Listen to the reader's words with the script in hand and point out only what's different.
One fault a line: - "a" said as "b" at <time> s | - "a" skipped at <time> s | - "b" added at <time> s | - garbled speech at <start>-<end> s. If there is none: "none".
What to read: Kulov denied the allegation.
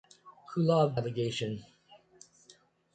- "denied the" skipped at 1.0 s